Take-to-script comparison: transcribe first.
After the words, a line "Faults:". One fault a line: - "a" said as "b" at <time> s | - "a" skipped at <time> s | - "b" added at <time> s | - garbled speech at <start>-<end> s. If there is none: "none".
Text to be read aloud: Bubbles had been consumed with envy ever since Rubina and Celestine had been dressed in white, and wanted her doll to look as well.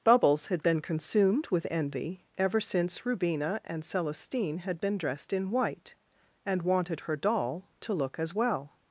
Bubbles had been consumed with envy ever since Rubina and Celestine had been dressed in white, and wanted her doll to look as well.
Faults:
none